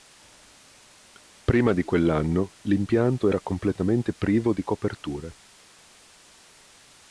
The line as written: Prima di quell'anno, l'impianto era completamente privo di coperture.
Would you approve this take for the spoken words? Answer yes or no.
yes